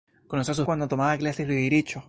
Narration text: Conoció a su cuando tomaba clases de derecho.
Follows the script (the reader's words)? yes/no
yes